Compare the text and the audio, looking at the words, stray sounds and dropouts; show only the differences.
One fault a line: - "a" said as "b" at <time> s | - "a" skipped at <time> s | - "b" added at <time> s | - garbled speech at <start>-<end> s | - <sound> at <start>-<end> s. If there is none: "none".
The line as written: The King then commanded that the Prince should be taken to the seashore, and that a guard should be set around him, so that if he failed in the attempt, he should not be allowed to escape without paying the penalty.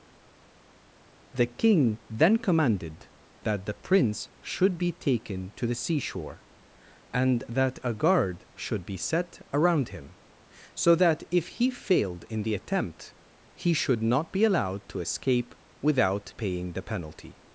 none